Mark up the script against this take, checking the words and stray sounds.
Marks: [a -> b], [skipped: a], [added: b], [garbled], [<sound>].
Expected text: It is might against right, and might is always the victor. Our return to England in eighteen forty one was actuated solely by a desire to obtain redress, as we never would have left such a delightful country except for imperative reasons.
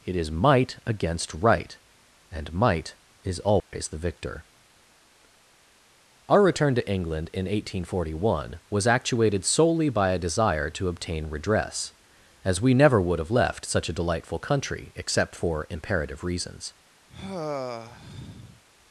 It is might against right, and might is always [dropout] the victor. Our return to England in eighteen forty one was actuated solely by a desire to obtain redress, as we never would have left such a delightful country except for imperative reasons. [sigh]